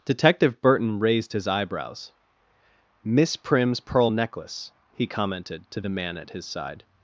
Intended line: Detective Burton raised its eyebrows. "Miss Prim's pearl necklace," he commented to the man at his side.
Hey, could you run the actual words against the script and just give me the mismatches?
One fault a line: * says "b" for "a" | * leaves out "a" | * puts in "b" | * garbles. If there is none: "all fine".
* says "his" for "its"